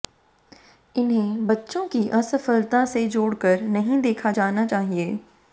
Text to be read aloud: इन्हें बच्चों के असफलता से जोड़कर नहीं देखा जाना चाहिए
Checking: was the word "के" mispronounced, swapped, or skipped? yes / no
yes